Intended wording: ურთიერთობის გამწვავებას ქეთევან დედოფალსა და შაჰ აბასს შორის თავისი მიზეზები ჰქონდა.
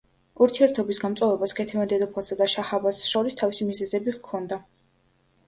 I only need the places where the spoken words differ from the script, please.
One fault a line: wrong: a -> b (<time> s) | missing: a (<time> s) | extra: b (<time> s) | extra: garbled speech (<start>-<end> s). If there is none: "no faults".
no faults